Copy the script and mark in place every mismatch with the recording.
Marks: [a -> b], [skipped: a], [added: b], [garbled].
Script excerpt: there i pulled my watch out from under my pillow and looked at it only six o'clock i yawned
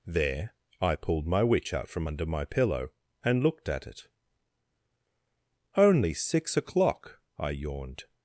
there i pulled my [watch -> witch] out from under my pillow and looked at it only six o'clock i yawned